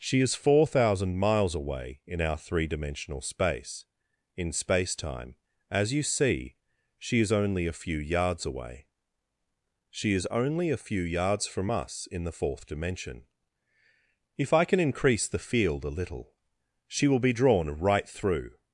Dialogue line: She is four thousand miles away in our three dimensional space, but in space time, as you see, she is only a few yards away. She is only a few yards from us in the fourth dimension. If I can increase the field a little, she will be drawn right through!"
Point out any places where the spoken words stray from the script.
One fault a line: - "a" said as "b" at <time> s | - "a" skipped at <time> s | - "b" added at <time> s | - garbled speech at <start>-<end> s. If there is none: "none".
- "but" skipped at 3.9 s